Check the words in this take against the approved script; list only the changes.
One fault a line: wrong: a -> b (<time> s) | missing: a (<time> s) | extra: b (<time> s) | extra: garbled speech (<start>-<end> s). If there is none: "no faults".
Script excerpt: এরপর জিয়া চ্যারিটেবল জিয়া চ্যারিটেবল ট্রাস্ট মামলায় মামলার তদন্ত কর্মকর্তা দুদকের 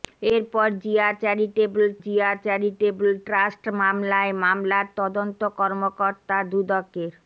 no faults